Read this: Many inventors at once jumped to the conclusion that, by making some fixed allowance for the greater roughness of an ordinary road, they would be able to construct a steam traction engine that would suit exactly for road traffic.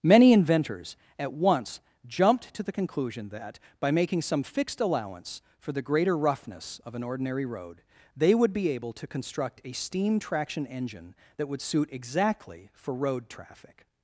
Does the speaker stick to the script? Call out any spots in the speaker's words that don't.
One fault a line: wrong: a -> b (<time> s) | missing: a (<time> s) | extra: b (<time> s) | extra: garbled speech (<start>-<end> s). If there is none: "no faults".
no faults